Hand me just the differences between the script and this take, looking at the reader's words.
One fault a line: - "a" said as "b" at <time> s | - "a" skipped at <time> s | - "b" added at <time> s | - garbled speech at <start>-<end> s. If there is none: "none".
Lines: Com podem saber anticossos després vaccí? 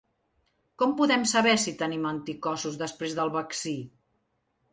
- "si tenim" added at 1.6 s
- "del" added at 3.2 s